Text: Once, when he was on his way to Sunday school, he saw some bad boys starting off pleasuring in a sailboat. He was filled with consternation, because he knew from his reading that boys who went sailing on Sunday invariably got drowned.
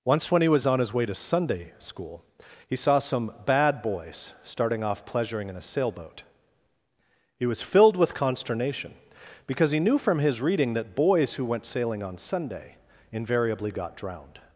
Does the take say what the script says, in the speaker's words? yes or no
yes